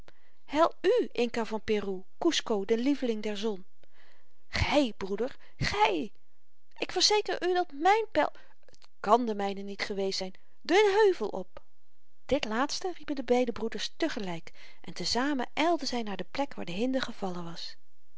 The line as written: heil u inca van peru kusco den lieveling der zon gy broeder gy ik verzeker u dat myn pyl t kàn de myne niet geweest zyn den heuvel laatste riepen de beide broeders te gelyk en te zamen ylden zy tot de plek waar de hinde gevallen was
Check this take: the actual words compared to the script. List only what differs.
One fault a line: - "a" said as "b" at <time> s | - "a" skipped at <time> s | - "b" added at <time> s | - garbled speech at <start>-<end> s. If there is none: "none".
- "op dit" added at 11.3 s
- "tot" said as "naar" at 16.0 s